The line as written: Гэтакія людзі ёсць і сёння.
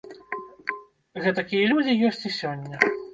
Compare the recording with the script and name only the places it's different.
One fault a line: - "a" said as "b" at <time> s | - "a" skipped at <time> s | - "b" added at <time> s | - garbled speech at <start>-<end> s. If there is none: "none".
none